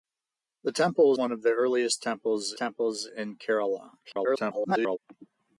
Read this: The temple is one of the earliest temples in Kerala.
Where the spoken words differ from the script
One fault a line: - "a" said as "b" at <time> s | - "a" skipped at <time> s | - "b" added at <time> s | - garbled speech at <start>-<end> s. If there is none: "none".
- "is" skipped at 1.1 s
- "temples" added at 2.5 s
- garbled speech at 4.0-5.0 s